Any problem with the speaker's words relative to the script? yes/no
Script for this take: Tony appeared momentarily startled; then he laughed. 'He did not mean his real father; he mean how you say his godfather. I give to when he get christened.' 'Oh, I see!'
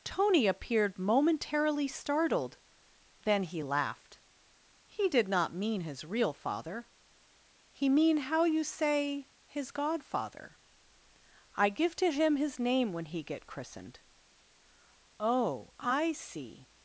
yes